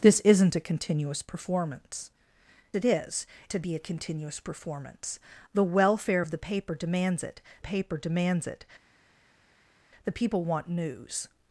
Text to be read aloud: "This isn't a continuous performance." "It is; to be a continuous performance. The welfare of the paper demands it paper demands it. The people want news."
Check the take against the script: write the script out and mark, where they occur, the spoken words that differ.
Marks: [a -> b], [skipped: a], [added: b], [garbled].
"This isn't a continuous performance." "It is; to be a continuous performance. The welfare of the paper demands it paper demands it. The people want news."